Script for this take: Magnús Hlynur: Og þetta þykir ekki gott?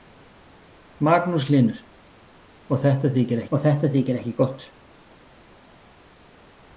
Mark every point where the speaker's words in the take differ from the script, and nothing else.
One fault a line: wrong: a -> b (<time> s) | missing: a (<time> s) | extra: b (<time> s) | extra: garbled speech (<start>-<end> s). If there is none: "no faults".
extra: Og þetta þykir (3.5 s)